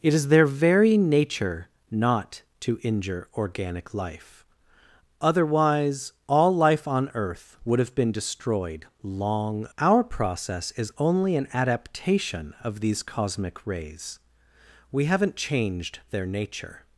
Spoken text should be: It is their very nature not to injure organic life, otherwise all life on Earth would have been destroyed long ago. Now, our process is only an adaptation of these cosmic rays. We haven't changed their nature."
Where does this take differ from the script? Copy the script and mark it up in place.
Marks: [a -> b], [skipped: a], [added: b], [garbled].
It is their very nature not to injure organic life, otherwise all life on Earth would have been destroyed long [skipped: ago. Now,] our process is only an adaptation of these cosmic rays. We haven't changed their nature."